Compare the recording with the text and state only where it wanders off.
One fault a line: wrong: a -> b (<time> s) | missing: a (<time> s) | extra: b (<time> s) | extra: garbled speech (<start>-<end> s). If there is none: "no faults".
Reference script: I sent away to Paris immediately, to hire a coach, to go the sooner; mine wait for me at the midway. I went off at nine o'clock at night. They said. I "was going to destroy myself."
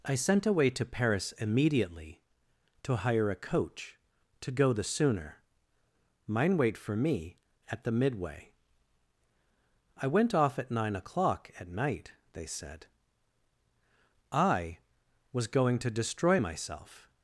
no faults